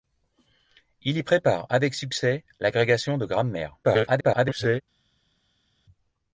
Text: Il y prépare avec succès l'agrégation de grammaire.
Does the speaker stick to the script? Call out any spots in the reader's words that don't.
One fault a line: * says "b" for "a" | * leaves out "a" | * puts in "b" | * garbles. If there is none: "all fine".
* garbles